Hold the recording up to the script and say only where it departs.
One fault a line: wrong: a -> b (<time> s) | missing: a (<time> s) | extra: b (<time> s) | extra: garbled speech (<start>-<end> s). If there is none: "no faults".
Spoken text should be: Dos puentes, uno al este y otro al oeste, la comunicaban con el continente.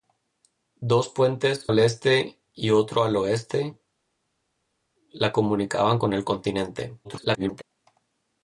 missing: uno (1.7 s)
extra: garbled speech (7.0-7.6 s)